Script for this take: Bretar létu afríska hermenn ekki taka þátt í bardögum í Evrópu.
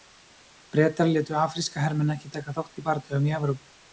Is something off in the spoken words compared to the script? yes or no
no